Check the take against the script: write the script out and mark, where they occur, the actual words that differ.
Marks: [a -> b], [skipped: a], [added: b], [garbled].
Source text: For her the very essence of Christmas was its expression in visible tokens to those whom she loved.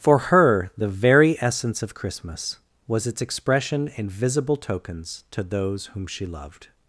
For her the very essence of Christmas was its expression in visible tokens to those whom she loved.